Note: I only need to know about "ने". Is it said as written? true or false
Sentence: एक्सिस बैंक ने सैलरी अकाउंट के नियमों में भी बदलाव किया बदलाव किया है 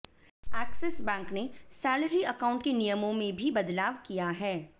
true